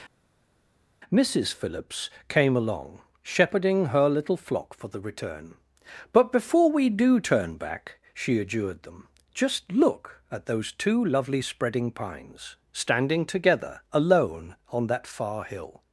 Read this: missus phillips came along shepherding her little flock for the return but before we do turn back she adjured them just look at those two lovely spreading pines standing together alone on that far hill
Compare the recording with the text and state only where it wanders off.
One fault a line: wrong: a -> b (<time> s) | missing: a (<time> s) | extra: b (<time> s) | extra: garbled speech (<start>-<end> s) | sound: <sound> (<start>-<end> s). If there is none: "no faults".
no faults